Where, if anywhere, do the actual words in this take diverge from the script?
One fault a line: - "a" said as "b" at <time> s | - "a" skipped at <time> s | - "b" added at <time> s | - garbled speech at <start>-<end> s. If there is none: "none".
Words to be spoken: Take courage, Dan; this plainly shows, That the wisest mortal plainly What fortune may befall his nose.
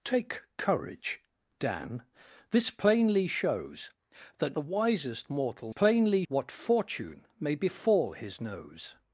none